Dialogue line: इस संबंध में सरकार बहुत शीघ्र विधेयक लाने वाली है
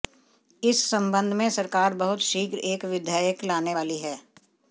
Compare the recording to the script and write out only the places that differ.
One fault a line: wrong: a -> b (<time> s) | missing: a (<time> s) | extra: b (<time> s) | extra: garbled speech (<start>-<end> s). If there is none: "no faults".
extra: एक (2.6 s)